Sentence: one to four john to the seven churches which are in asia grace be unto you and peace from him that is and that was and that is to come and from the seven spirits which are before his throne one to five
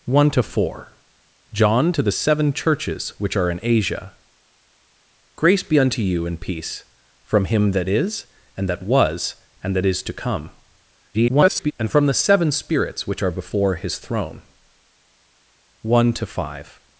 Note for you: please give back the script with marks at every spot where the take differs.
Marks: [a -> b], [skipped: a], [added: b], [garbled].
one to four john to the seven churches which are in asia grace be unto you and peace from him that is and that was and that is to come [garbled] and from the seven spirits which are before his throne one to five